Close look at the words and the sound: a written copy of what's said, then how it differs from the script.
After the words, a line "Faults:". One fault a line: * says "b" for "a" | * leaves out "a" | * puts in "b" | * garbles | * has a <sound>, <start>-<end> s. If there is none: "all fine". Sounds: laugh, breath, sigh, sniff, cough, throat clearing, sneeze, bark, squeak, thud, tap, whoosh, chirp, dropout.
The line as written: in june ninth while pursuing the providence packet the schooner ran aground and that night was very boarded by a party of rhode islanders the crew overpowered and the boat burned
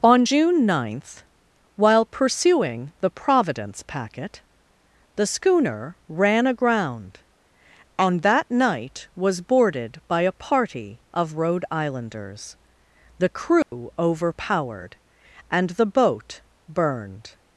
on june ninth while pursuing the providence packet the schooner ran aground and that night was boarded by a party of rhode islanders the crew overpowered and the boat burned
Faults:
* says "on" for "in"
* leaves out "very"
* has a dropout, 13.6-13.7 s